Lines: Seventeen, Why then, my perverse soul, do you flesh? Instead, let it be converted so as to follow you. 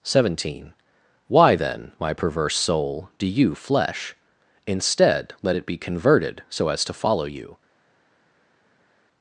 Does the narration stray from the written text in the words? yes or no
no